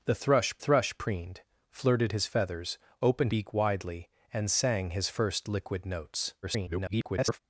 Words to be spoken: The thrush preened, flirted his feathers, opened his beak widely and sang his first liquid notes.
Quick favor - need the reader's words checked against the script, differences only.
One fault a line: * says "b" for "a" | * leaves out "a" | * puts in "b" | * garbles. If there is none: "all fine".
* puts in "thrush"
* leaves out "his"
* garbles